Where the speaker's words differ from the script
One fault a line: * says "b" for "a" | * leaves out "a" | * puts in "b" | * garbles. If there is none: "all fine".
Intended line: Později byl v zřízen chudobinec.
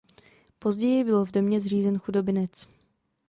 * puts in "domě"